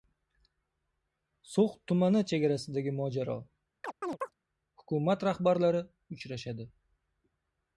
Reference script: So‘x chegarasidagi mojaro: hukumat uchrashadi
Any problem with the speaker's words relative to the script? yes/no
yes